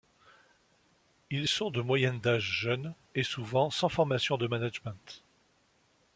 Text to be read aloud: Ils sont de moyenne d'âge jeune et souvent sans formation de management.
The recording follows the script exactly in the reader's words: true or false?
true